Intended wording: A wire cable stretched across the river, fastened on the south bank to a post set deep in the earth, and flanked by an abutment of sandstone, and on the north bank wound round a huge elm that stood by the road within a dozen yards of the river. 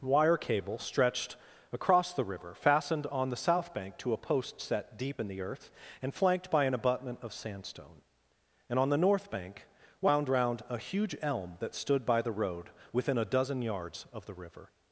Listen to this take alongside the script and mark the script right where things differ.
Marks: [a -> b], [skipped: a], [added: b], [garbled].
[skipped: A] wire cable stretched across the river, fastened on the south bank to a post set deep in the earth, and flanked by an abutment of sandstone, and on the north bank wound round a huge elm that stood by the road within a dozen yards of the river.